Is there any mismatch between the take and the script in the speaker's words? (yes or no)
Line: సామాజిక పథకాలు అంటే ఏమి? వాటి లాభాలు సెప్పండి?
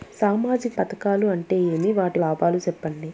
no